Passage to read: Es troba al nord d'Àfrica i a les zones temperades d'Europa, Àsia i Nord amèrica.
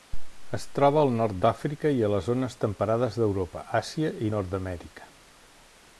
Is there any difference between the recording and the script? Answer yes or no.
no